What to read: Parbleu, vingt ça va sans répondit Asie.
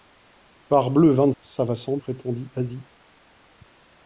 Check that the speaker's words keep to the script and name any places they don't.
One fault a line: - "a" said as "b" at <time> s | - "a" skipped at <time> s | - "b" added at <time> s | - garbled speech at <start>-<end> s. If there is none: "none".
none